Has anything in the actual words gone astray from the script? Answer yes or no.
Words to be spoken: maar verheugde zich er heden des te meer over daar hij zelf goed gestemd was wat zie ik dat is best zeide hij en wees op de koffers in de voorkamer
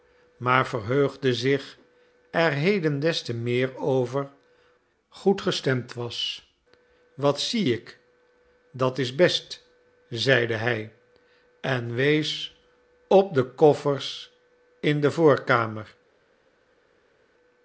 yes